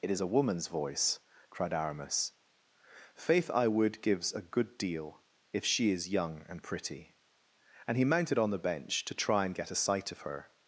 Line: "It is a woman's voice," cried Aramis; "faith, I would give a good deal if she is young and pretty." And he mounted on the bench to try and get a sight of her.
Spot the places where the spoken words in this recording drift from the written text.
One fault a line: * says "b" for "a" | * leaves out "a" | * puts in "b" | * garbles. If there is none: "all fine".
* says "gives" for "give"